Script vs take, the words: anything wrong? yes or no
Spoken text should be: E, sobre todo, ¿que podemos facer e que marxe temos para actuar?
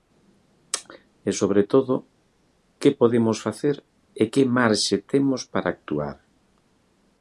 no